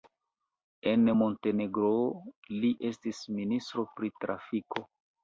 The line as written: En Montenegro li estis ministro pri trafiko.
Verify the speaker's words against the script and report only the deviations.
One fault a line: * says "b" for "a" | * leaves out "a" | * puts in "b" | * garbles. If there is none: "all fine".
all fine